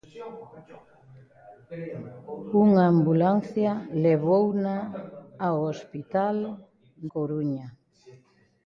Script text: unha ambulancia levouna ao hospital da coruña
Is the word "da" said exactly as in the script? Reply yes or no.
no